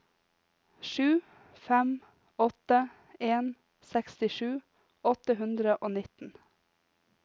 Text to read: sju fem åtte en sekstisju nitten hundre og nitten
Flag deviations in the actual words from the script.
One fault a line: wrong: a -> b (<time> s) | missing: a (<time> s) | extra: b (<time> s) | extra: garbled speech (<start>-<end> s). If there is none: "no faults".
wrong: nitten -> åtte (5.1 s)